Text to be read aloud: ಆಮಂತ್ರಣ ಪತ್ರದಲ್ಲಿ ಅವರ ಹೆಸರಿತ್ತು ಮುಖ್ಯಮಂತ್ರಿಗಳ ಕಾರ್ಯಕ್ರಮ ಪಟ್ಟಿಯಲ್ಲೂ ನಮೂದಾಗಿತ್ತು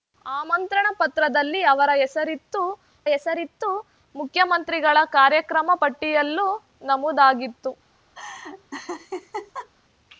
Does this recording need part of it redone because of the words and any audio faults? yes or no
yes